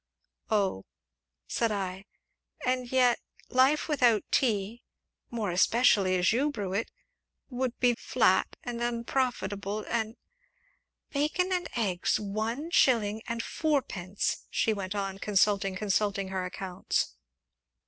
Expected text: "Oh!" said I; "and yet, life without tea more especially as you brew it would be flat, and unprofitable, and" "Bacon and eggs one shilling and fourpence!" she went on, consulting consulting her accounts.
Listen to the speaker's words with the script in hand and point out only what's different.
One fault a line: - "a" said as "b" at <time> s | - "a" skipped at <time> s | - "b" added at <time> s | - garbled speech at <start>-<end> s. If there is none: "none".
none